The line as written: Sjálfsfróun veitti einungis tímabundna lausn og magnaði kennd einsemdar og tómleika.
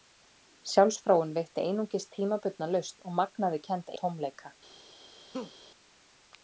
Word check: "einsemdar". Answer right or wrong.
wrong